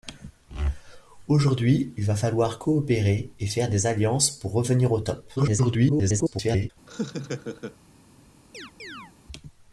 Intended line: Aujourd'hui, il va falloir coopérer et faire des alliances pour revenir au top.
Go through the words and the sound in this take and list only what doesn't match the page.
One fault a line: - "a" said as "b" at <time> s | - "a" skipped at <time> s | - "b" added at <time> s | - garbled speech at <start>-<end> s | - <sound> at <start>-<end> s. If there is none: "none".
- garbled speech at 5.4-6.7 s
- laugh at 6.9-7.8 s
- chirp at 8.5-9.1 s